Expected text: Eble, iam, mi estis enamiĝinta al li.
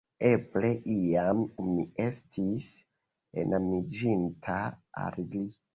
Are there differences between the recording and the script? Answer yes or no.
no